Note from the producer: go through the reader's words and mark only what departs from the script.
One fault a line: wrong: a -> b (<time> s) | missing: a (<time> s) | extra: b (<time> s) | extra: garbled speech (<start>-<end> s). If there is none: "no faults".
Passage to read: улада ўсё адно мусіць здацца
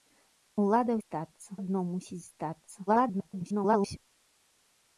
wrong: ўсё -> здацца (1.0 s)
extra: garbled speech (2.9-4.0 s)